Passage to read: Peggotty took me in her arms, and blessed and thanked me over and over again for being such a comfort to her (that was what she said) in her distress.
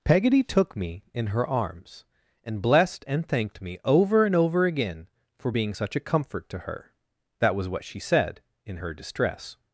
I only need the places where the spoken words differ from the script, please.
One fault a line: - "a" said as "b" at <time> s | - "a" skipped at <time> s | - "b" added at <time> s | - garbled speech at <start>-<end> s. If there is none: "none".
none